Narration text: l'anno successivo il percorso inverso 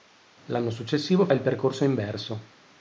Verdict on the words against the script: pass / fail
pass